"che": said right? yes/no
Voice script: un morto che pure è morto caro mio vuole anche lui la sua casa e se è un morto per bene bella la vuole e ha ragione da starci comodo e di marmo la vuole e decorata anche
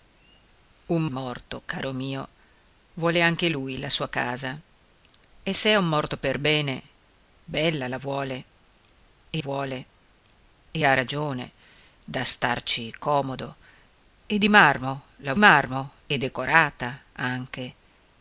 no